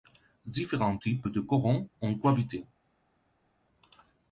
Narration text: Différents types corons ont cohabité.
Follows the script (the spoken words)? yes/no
no